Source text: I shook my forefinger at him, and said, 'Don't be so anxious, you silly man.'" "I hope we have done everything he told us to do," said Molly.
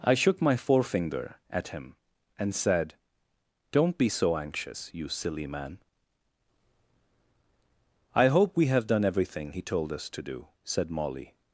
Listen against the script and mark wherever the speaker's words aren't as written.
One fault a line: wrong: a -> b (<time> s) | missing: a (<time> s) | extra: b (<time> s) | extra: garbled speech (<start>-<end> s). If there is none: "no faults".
no faults